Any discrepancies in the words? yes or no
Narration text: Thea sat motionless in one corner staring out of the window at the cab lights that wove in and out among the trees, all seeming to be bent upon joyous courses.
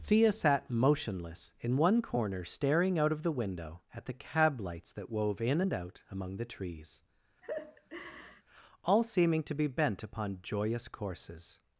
no